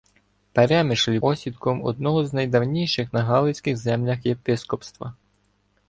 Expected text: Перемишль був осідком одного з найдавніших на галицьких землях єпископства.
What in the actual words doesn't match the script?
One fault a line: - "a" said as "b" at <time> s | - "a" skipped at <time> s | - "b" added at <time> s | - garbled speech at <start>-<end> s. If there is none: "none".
- "був" skipped at 1.2 s